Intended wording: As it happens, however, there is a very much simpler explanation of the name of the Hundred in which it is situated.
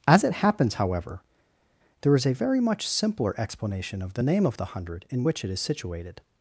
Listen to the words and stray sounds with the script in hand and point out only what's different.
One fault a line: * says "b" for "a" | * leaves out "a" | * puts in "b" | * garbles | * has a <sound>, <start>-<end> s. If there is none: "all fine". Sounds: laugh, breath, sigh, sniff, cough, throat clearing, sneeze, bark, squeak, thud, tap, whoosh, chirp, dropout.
all fine